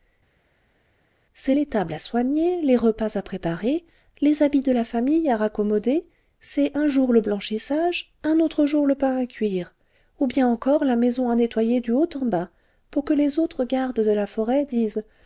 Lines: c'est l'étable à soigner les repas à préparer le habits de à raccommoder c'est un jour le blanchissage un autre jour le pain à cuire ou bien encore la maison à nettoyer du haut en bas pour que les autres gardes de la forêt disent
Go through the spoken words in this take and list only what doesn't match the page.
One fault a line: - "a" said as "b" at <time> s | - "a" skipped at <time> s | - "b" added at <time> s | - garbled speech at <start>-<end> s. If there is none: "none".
- "le" said as "les" at 4.2 s
- "la famille" added at 4.7 s